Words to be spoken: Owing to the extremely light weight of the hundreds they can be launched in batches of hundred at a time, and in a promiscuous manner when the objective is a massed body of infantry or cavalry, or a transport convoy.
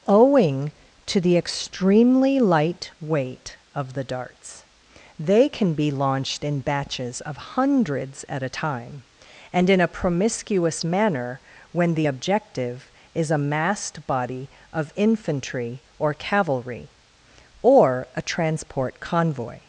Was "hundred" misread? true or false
true